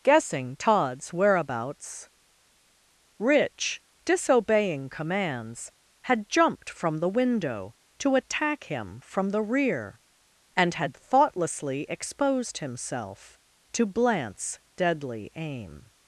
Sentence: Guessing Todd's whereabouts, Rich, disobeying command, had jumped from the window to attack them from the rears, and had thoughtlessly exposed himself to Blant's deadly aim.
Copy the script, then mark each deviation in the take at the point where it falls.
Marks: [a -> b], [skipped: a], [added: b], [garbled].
Guessing Todd's whereabouts, Rich, disobeying [command, -> commands] had jumped from the window to attack [them -> him] from the [rears, -> rear] and had thoughtlessly exposed himself to Blant's deadly aim.